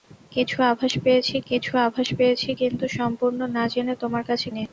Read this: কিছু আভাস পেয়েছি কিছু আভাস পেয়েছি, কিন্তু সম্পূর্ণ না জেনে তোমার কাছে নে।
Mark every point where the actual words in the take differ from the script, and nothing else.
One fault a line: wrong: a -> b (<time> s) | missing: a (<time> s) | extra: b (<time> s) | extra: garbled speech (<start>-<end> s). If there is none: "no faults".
no faults